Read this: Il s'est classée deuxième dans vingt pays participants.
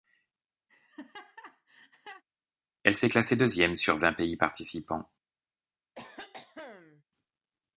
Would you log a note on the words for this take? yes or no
yes